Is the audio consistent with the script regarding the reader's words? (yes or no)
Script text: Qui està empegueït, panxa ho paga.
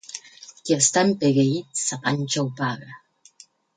no